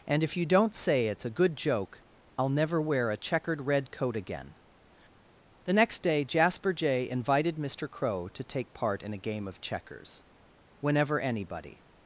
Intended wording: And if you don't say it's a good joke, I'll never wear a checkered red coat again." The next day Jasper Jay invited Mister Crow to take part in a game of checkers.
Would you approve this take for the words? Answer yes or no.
no